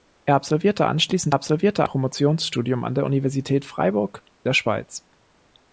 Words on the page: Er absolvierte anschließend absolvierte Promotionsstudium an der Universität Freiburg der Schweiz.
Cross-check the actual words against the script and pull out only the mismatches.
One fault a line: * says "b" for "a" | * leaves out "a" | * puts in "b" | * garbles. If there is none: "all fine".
all fine